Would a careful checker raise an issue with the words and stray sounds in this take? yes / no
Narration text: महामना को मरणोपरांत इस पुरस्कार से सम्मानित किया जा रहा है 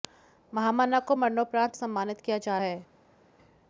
yes